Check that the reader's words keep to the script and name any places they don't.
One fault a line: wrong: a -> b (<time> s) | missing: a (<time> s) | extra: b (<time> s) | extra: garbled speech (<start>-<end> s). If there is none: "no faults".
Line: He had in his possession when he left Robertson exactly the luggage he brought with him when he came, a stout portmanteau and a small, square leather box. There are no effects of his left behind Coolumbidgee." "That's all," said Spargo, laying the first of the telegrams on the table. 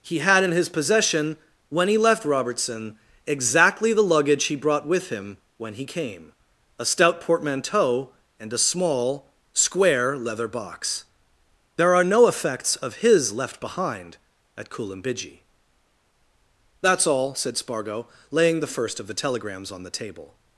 extra: at (14.6 s)